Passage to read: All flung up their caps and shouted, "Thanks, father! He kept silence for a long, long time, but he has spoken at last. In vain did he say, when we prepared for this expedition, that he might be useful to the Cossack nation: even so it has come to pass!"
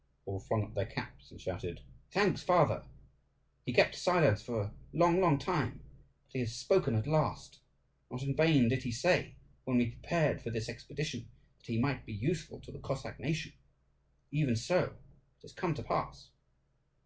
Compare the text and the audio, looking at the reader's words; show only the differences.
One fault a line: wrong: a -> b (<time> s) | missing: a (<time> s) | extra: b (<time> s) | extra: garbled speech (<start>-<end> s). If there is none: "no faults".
extra: Not (8.1 s)